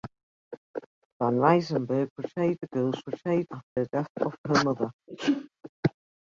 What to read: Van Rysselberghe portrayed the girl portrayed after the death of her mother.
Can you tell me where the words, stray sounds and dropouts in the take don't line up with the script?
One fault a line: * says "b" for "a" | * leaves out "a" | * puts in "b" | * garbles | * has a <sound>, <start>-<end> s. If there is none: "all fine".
* has a dropout, 3.7-3.8 s
* has a sneeze, 5.1-5.5 s